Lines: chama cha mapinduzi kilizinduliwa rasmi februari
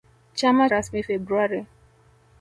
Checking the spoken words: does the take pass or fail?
fail